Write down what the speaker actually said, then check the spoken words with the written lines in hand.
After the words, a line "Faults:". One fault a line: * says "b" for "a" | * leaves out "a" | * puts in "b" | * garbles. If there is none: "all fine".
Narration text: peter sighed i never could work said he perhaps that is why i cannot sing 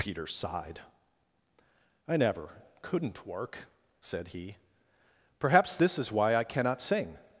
peter sighed i never couldn't work said he perhaps this is why i cannot sing
Faults:
* says "couldn't" for "could"
* says "this" for "that"